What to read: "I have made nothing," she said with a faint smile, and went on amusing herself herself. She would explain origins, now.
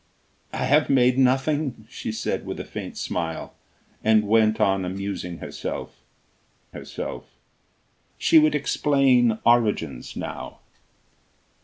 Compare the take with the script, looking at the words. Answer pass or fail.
pass